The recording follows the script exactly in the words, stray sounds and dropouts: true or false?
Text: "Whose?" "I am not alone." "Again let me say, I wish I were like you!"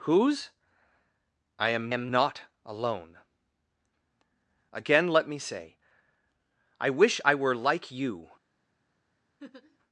false